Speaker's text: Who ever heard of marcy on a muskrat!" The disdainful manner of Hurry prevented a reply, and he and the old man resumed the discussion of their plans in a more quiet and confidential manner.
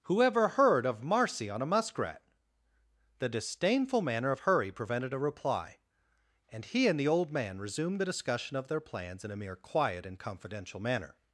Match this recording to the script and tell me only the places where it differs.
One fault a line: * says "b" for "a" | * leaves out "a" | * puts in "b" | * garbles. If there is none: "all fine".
* says "mere" for "more"